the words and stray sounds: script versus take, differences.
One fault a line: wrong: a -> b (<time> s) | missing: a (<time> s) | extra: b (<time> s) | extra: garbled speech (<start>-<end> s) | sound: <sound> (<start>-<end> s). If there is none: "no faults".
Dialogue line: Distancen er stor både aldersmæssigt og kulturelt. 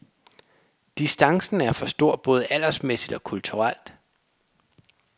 extra: for (1.7 s)